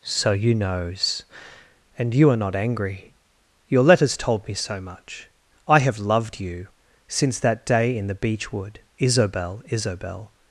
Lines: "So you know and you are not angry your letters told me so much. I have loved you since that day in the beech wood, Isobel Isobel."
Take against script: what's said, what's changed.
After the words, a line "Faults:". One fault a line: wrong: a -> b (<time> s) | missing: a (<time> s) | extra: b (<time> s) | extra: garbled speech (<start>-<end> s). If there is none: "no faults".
"So you knows and you are not angry your letters told me so much. I have loved you since that day in the beech wood, Isobel Isobel."
Faults:
wrong: know -> knows (0.6 s)